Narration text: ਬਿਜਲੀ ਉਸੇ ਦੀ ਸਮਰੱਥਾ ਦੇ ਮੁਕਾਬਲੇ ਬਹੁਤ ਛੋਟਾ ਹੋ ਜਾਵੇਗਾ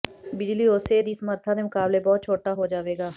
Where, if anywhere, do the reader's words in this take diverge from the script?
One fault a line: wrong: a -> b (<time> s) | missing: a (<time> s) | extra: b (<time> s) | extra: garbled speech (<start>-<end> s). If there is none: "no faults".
no faults